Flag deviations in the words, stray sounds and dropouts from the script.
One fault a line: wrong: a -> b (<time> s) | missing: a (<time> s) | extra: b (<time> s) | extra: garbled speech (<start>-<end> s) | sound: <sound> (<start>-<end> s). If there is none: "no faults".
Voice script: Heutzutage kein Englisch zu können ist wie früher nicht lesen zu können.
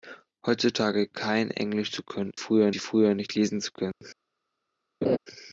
wrong: ist -> früher (2.4 s)
sound: dropout (3.9-4.0 s)
sound: laugh (5.0-5.2 s)